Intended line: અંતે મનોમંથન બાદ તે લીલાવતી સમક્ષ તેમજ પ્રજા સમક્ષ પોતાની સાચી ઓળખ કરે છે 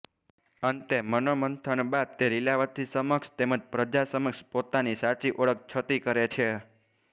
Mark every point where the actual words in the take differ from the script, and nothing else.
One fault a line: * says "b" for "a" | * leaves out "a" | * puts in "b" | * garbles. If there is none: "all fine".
* puts in "છતી"